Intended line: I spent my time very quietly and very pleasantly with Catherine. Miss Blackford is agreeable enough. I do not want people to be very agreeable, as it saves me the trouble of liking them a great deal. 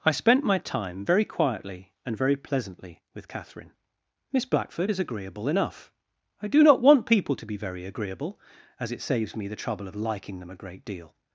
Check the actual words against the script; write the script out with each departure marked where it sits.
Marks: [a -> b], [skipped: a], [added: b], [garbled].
I spent my time very quietly and very pleasantly with Catherine. Miss Blackford is agreeable enough. I do not want people to be very agreeable, as it saves me the trouble of liking them a great deal.